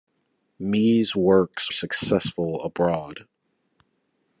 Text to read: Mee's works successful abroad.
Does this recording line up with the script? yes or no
yes